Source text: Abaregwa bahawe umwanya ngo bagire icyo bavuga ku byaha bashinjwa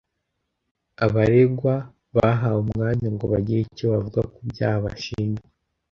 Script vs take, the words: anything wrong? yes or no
no